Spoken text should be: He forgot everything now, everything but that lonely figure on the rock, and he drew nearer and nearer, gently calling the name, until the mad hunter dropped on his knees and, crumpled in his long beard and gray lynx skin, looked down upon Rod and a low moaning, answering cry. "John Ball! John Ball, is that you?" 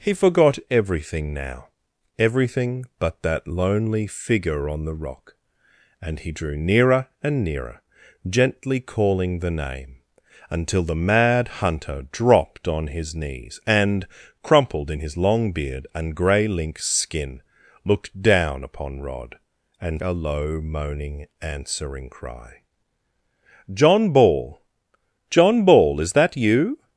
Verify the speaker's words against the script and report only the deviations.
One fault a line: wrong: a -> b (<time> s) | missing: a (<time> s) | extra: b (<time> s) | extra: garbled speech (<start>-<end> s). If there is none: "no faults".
no faults